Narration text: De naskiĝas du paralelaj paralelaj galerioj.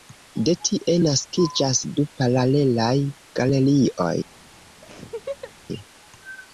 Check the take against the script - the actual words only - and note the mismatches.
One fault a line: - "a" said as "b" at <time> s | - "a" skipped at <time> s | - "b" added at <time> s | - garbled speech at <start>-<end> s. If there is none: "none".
- "tie" added at 0.7 s
- "paralelaj" skipped at 2.9 s